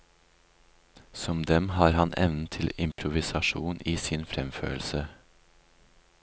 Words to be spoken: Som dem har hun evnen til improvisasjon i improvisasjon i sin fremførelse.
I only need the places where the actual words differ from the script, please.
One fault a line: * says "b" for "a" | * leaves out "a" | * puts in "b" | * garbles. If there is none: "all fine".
* says "han" for "hun"
* leaves out "improvisasjon i"